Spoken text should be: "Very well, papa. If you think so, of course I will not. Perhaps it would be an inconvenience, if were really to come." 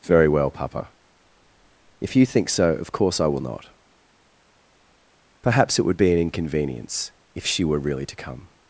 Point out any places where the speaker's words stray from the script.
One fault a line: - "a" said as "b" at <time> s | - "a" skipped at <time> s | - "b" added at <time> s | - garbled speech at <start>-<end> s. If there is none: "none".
- "she" added at 7.5 s